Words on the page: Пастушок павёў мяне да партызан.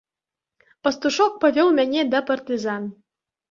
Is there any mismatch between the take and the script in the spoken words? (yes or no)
no